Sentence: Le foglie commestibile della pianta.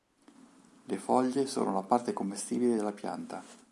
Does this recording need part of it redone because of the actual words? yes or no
yes